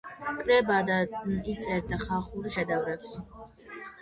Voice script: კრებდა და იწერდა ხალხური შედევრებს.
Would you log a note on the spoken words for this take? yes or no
no